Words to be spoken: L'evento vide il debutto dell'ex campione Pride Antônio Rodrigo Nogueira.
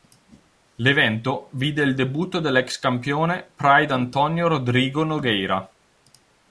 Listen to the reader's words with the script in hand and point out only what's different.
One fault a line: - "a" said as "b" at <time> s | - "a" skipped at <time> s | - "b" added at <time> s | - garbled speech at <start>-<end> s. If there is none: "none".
none